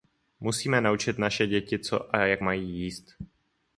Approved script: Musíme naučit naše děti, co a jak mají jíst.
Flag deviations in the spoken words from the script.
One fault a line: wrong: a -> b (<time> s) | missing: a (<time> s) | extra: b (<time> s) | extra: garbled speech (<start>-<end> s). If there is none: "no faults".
no faults